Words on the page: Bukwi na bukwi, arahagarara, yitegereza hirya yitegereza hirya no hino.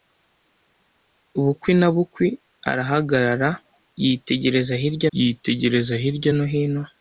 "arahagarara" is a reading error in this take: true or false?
false